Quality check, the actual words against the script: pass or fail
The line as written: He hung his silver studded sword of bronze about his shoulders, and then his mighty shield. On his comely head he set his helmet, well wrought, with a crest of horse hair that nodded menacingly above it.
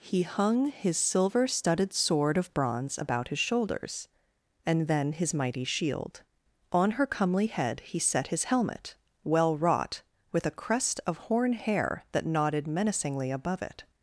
fail